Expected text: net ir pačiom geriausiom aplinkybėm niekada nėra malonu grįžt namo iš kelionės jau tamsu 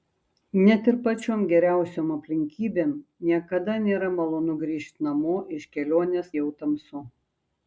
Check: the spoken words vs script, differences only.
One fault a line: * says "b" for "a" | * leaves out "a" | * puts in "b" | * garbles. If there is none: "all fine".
all fine